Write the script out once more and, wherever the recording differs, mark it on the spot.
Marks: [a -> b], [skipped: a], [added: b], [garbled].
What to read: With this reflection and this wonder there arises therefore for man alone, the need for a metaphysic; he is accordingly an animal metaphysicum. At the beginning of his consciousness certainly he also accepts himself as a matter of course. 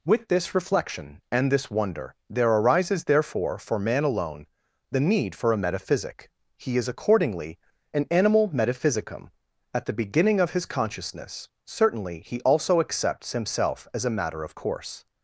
With this reflection and this wonder there arises therefore for man alone, the need for a metaphysic; he is accordingly an animal metaphysicum. At the beginning of his consciousness certainly he also accepts himself as a matter of course.